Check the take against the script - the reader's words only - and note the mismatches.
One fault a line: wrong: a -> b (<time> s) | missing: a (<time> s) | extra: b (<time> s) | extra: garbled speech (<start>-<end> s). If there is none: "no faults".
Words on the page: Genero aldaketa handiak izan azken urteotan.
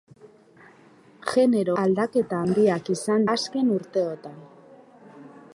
no faults